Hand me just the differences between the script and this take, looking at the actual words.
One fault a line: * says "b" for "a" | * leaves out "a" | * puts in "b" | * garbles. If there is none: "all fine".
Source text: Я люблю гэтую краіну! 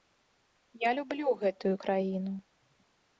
all fine